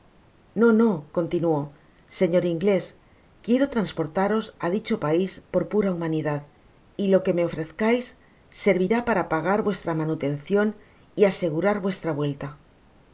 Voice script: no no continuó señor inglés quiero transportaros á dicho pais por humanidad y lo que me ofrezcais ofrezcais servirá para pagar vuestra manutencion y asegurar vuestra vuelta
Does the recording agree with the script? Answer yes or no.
no